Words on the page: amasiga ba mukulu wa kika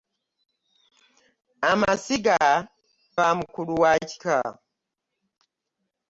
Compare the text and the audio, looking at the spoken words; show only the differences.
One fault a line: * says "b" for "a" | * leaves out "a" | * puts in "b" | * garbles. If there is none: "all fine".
all fine